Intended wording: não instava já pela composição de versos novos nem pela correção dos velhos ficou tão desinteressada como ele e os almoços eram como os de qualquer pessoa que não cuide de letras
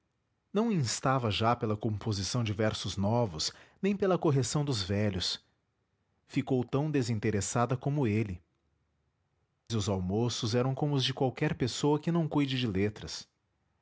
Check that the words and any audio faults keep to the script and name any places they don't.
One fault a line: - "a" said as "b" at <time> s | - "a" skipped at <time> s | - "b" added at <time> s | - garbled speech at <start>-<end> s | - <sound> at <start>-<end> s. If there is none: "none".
none